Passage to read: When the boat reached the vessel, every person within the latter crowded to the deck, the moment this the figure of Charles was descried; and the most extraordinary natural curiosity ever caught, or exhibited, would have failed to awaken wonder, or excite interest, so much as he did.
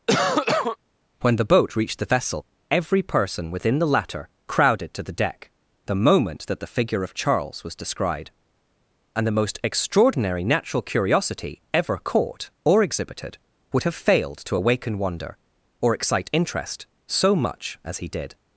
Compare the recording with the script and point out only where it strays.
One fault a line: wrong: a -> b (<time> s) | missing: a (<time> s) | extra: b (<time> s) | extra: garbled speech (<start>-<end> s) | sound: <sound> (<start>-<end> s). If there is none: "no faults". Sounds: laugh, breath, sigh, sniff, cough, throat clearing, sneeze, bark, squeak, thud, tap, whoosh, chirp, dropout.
sound: cough (0.1-0.8 s)
wrong: this -> that (6.5 s)